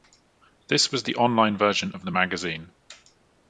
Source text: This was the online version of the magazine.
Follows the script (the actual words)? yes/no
yes